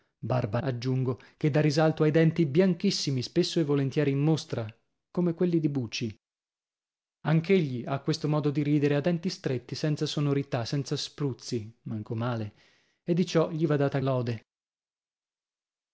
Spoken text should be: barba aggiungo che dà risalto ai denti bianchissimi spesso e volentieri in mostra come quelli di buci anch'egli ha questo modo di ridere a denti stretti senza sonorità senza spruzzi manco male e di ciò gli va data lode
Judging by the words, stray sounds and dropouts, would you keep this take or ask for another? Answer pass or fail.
pass